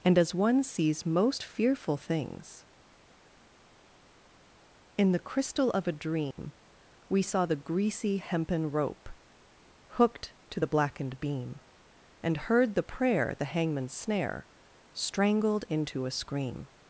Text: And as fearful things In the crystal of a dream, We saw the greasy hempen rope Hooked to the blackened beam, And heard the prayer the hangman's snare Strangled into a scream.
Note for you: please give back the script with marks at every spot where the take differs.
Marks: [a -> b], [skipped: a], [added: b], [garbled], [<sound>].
And as [added: one sees most] fearful things In the crystal of a dream, [dropout] We saw the greasy hempen rope Hooked to the blackened beam, And heard the prayer the hangman's snare Strangled into a scream.